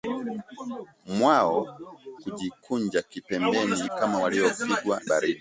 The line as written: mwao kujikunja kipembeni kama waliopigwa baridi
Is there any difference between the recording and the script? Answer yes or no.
no